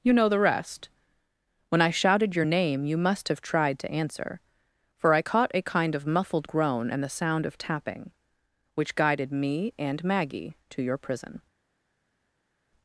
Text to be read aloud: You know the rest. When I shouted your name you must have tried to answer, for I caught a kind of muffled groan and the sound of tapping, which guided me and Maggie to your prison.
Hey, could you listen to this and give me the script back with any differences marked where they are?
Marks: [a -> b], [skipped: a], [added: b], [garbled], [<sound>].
You know the rest. When I shouted your name you must have tried to answer, for I caught a kind of muffled groan and the sound of tapping, which guided me and Maggie to your prison.